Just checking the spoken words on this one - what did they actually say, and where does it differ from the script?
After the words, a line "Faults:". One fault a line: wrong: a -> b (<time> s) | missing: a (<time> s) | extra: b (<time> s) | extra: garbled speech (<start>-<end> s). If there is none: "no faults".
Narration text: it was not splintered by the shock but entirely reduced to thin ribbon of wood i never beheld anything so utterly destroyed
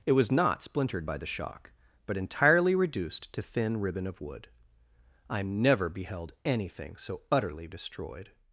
it was not splintered by the shock but entirely reduced to thin ribbon of wood i never beheld anything so utterly destroyed
Faults:
no faults